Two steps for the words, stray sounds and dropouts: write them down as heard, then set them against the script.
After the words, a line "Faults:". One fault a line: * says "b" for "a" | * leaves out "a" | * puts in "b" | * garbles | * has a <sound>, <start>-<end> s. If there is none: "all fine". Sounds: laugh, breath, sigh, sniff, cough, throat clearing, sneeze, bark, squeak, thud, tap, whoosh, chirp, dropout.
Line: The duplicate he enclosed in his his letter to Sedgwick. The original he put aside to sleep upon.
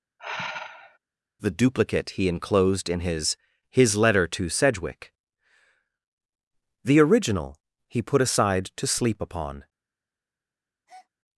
The duplicate he enclosed in his his letter to Sedgwick. The original he put aside to sleep upon.
Faults:
* has a sigh, 0.2-1.0 s
* has a breath, 10.9-11.1 s